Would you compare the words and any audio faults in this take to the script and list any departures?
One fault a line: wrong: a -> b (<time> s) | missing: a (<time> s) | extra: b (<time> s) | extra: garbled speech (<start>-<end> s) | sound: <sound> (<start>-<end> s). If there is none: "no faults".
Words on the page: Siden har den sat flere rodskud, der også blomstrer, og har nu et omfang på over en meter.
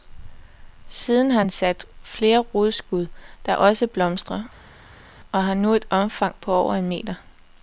no faults